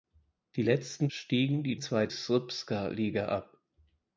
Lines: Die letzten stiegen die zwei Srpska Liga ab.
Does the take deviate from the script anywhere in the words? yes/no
no